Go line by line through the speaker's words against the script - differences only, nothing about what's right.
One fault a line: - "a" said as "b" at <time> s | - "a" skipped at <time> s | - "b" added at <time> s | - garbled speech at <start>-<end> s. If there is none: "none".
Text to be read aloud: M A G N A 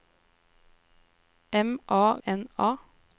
- "G" skipped at 2.2 s